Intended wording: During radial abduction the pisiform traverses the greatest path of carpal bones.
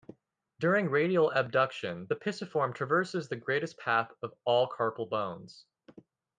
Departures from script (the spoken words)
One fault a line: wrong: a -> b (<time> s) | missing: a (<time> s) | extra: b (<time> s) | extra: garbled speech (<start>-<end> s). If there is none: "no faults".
extra: all (4.4 s)